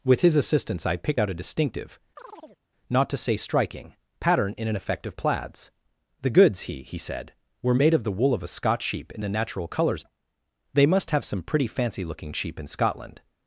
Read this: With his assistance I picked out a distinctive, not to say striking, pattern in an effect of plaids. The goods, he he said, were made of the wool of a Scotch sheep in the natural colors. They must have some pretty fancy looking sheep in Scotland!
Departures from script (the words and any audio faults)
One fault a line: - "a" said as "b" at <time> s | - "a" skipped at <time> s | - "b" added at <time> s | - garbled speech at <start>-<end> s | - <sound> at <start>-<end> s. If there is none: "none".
- chirp at 2.2-2.6 s